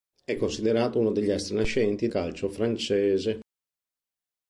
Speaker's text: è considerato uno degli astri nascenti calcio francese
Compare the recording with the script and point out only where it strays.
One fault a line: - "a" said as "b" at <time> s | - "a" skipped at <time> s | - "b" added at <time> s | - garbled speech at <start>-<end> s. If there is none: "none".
none